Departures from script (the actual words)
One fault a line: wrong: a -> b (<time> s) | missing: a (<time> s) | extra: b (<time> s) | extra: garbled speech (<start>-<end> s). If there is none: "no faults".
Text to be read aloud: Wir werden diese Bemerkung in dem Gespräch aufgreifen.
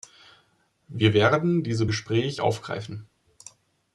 missing: Bemerkung in dem (1.9 s)